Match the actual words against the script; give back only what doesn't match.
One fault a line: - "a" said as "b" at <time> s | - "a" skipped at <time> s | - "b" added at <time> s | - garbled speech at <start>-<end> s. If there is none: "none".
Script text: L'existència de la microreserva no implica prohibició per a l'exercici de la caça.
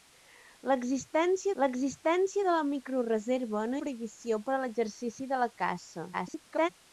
- "l'existència" added at 1.6 s
- "implica" skipped at 3.8 s
- garbled speech at 6.1-6.7 s